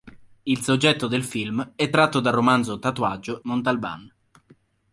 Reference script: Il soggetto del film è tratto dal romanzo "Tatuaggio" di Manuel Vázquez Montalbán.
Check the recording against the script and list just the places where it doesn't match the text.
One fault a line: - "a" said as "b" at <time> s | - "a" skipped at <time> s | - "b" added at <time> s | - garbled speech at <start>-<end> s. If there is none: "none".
- "di Manuel Vázquez" skipped at 3.4 s